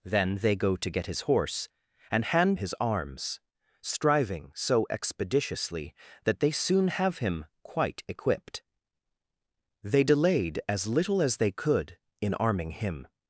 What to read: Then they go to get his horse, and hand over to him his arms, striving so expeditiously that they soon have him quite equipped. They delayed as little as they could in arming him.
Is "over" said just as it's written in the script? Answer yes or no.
no